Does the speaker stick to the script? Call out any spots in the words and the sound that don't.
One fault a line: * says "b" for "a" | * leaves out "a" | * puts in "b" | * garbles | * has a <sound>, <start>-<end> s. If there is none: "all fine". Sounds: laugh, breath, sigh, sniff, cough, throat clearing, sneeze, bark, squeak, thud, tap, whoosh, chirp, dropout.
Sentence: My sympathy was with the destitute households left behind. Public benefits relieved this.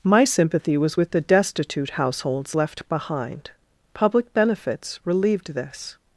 all fine